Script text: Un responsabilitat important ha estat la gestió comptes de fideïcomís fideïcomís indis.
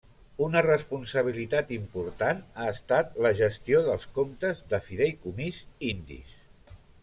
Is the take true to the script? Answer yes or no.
no